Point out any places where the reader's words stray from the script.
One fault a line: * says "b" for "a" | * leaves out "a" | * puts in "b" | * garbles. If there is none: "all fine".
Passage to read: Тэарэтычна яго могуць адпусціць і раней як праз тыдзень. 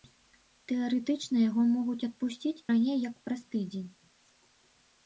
* leaves out "і"